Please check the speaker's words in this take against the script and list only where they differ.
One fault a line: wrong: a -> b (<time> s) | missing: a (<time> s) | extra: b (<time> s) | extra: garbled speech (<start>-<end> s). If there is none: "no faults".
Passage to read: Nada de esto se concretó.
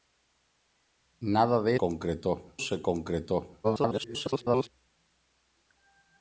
wrong: esto -> concretó (1.8 s)
extra: garbled speech (3.6-4.7 s)